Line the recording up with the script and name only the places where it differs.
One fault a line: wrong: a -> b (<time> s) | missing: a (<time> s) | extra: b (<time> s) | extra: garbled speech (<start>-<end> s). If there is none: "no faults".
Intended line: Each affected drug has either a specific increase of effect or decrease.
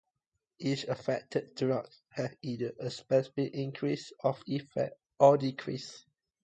no faults